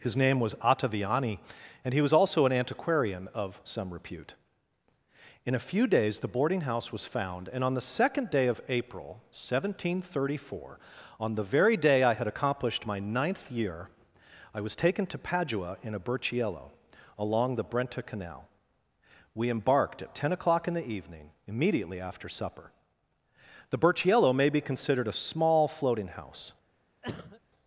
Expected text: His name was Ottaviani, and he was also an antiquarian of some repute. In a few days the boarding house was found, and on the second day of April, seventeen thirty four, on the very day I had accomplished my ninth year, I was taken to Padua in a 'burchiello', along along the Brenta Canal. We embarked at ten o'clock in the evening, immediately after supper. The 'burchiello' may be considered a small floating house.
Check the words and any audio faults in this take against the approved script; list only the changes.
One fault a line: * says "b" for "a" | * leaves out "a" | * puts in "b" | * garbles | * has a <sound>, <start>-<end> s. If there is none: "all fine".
* leaves out "along"
* has a cough, 27.0-27.4 s